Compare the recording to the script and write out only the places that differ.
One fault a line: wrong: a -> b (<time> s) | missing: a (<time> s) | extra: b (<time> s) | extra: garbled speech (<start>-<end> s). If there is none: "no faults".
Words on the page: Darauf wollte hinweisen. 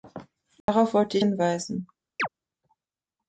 no faults